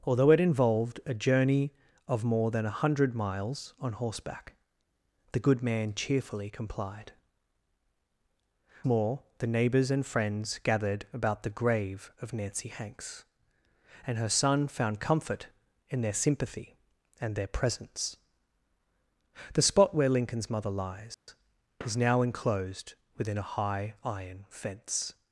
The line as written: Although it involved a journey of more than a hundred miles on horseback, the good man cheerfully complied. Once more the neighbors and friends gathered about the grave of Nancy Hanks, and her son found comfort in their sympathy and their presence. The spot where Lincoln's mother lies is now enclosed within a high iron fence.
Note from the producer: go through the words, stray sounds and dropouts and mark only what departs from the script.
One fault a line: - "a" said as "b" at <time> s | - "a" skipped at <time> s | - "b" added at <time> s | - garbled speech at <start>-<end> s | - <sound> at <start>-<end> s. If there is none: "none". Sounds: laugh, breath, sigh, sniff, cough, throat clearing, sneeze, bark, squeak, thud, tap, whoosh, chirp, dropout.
- "Once" skipped at 7.1 s
- dropout at 21.1-21.3 s